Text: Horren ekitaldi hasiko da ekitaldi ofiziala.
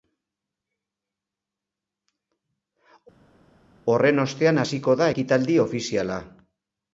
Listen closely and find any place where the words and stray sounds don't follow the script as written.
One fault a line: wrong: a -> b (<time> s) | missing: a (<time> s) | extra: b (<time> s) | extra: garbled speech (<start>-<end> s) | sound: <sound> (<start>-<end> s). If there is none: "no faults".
wrong: ekitaldi -> ostean (4.2 s)